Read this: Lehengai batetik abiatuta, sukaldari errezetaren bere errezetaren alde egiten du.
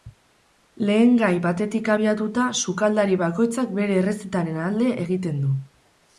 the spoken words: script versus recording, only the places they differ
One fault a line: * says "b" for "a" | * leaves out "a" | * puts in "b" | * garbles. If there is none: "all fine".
* says "bakoitzak" for "errezetaren"